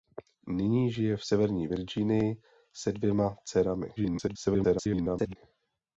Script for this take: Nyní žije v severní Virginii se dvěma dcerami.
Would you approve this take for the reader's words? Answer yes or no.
no